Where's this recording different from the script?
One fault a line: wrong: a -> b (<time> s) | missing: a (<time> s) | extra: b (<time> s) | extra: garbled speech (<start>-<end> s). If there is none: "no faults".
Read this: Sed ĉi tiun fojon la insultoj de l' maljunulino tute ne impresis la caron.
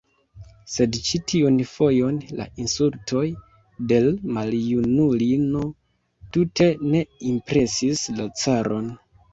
no faults